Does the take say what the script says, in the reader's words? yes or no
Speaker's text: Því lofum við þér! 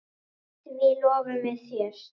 yes